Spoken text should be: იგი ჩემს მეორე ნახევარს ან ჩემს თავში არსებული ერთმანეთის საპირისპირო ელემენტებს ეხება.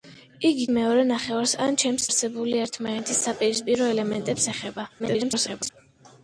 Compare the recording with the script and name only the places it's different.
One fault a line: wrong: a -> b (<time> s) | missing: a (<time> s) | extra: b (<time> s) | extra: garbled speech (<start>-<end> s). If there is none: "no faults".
missing: ჩემს (0.6 s)
missing: თავში (2.1 s)
extra: garbled speech (5.0-5.7 s)